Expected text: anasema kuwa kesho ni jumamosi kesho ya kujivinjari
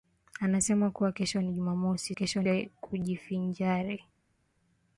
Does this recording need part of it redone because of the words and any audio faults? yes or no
no